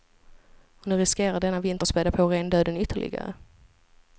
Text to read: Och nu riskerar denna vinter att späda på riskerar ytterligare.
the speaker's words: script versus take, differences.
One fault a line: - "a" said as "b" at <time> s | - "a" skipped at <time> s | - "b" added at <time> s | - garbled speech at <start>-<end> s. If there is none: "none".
- "riskerar" said as "rendöden" at 2.3 s